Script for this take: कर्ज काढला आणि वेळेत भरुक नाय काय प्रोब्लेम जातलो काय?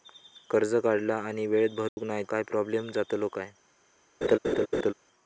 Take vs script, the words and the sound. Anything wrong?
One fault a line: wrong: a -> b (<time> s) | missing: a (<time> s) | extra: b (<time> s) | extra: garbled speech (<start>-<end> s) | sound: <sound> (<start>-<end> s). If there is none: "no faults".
sound: dropout (1.9-2.0 s)
sound: laugh (4.2-4.9 s)